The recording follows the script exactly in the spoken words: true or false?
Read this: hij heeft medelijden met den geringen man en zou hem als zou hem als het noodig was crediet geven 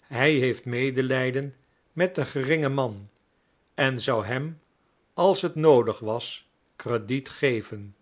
false